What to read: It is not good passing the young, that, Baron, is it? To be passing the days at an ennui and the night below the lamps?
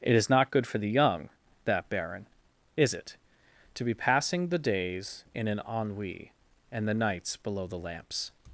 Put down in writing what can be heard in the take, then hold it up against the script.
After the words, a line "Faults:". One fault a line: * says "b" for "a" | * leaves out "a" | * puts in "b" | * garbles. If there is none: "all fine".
It is not good for the young, that, Baron, is it? To be passing the days in an ennui and the nights below the lamps?
Faults:
* says "for" for "passing"
* says "in" for "at"
* says "nights" for "night"